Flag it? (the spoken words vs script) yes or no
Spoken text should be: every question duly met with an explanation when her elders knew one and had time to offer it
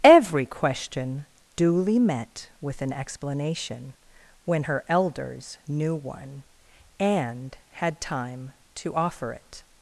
no